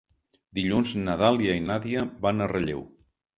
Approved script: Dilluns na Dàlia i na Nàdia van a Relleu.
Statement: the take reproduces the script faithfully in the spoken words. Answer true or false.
false